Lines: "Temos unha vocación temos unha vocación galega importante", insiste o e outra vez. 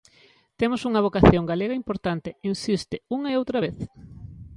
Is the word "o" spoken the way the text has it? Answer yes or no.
no